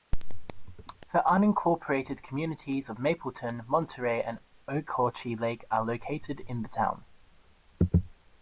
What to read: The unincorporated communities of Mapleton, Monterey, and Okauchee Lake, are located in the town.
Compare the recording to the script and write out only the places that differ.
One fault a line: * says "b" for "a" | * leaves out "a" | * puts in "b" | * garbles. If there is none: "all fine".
all fine